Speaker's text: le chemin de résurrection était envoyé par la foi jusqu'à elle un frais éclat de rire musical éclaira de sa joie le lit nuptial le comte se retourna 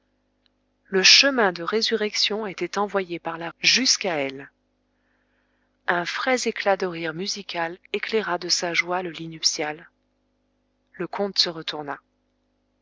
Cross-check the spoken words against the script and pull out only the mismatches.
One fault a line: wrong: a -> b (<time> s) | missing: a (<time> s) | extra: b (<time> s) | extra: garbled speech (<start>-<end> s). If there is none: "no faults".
missing: foi (3.5 s)